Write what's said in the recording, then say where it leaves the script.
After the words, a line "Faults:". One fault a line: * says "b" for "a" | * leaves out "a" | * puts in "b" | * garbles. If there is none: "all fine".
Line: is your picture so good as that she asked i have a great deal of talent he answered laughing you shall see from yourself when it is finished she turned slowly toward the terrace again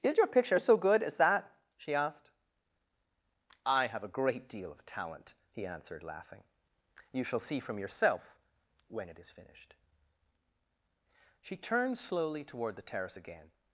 is your picture so good as that she asked i have a great deal of talent he answered laughing you shall see from yourself when it is finished she turned slowly toward the terrace again
Faults:
all fine